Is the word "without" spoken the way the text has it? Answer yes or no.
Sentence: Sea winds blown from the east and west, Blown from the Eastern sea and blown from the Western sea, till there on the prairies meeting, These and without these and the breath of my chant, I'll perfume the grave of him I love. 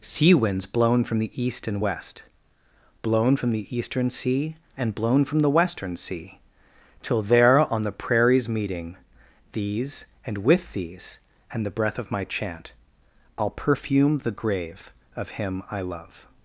no